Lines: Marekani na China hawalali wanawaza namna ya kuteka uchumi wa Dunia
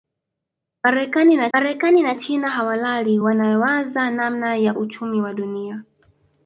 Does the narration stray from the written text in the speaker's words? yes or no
yes